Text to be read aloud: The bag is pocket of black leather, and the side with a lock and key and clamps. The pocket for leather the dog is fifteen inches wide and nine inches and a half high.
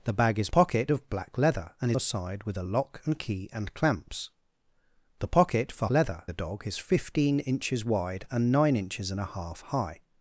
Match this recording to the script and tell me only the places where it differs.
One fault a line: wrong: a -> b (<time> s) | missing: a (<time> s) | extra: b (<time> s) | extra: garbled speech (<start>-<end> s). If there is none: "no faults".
no faults